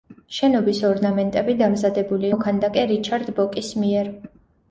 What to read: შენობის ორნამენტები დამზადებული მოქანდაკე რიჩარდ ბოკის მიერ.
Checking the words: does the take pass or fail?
pass